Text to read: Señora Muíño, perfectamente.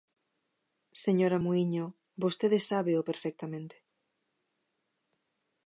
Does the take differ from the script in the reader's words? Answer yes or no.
yes